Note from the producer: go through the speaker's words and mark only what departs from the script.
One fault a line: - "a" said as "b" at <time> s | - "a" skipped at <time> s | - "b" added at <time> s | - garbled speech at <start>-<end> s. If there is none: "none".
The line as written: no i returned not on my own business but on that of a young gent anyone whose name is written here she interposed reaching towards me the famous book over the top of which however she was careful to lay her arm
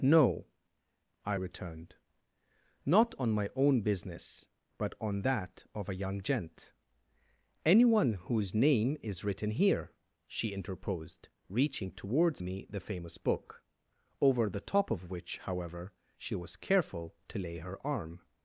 none